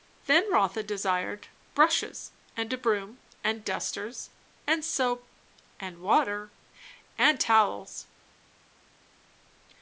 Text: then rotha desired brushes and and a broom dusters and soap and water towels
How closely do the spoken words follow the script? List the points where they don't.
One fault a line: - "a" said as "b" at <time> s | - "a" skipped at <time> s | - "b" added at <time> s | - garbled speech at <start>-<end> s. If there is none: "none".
- "and" skipped at 2.7 s
- "and" added at 3.4 s
- "and" added at 7.2 s